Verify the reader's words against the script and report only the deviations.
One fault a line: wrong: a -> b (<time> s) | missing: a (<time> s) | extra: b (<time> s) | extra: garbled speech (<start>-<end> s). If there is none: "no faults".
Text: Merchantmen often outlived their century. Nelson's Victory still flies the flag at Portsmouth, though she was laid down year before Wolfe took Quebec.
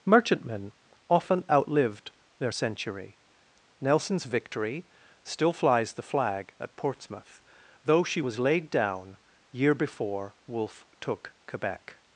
no faults